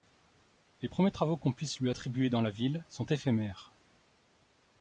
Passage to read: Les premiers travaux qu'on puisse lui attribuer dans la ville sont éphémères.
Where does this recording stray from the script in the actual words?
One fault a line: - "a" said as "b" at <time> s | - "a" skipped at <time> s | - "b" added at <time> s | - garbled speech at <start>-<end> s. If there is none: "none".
none